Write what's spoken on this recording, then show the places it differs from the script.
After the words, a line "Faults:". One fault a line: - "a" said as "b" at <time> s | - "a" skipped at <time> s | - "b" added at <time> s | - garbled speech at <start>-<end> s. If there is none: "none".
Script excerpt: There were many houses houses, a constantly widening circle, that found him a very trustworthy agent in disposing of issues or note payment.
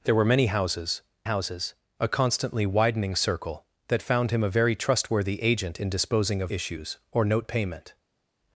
There were many houses houses, a constantly widening circle, that found him a very trustworthy agent in disposing of issues or note payment.
Faults:
none